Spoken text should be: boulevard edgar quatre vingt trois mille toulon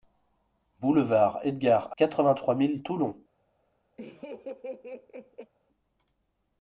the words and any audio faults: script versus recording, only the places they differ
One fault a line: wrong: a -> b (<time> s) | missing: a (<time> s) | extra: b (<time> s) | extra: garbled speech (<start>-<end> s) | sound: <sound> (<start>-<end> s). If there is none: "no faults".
sound: laugh (4.0-5.5 s)